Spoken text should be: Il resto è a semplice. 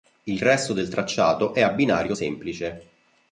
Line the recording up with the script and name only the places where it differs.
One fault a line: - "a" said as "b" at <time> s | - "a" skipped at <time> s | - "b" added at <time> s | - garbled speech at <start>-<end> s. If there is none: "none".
- "del tracciato" added at 0.7 s
- "binario" added at 1.7 s